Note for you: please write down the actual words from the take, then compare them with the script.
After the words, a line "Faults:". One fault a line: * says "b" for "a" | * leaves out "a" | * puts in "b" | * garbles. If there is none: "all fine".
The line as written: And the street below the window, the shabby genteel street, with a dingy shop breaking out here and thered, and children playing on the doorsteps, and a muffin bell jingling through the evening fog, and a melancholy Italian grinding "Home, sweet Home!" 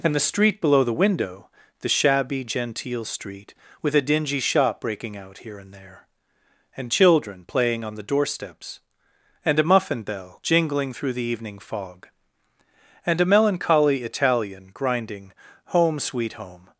And the street below the window, the shabby genteel street, with a dingy shop breaking out here and there, and children playing on the doorsteps, and a muffin bell jingling through the evening fog, and a melancholy Italian grinding "Home, sweet Home!"
Faults:
* says "there" for "thered"